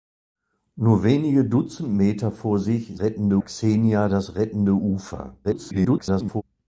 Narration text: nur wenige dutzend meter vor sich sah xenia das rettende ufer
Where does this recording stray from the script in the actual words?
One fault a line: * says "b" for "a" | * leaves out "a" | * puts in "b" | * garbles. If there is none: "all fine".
* says "rettende" for "sah"
* garbles